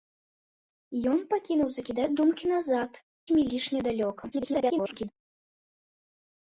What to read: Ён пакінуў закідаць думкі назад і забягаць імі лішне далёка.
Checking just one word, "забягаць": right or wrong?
wrong